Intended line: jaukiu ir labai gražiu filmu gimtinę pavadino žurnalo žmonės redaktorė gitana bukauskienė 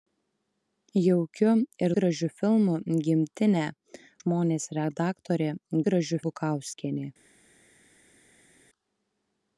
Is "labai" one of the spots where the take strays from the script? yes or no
yes